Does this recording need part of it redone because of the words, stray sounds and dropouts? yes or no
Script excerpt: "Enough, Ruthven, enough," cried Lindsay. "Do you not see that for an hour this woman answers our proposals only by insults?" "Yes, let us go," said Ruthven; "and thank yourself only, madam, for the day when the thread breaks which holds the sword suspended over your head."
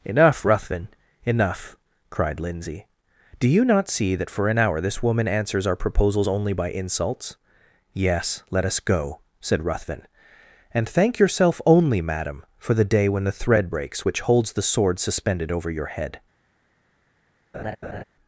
yes